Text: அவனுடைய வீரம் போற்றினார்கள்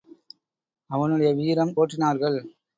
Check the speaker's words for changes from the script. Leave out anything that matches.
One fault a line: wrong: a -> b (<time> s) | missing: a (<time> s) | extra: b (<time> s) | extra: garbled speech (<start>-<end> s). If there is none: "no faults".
no faults